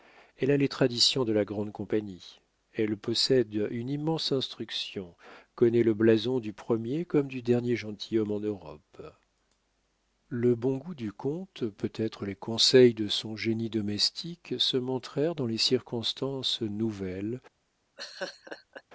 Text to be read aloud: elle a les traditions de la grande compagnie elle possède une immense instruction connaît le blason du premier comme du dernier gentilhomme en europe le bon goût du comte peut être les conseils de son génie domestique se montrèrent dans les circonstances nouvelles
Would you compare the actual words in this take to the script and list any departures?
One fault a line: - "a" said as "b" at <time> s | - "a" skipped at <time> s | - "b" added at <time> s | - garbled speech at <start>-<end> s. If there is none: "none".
none